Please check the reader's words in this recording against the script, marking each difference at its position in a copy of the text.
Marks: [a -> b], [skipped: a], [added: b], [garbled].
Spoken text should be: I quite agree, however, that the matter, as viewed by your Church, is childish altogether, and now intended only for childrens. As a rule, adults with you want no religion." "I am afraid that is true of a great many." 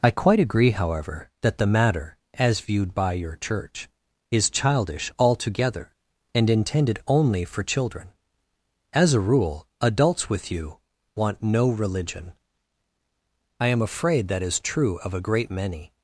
I quite agree, however, that the matter, as viewed by your Church, is childish altogether, and [skipped: now] intended only for [childrens. -> children] As a rule, adults with you want no religion." "I am afraid that is true of a great many."